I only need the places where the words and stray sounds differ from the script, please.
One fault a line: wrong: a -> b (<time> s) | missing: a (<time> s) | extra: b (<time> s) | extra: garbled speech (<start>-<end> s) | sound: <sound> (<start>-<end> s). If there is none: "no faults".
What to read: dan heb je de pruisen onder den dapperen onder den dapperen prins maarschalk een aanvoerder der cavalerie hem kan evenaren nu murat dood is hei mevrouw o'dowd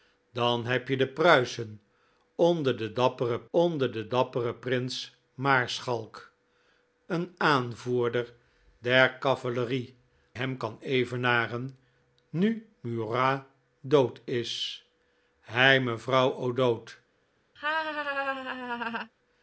sound: laugh (17.6-19.1 s)